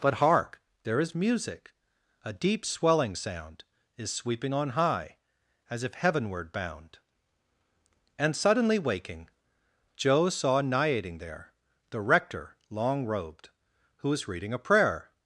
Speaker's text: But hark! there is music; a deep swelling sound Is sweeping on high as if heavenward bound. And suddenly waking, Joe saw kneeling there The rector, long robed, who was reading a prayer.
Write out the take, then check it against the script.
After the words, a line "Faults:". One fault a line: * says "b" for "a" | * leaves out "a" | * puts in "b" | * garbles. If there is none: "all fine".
But hark! there is music; a deep swelling sound Is sweeping on high as if heavenward bound. And suddenly waking, Joe saw niating there The rector, long robed, who was reading a prayer.
Faults:
* says "niating" for "kneeling"